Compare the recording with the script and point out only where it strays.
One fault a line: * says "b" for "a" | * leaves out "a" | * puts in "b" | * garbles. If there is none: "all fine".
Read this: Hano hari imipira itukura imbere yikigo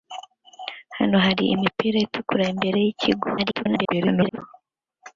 * garbles